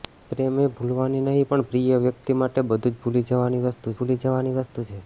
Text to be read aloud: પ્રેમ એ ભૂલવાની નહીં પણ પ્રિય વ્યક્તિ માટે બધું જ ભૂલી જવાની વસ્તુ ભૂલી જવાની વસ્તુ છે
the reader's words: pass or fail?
pass